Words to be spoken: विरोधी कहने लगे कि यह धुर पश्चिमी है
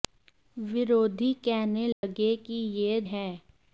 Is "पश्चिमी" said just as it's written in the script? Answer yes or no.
no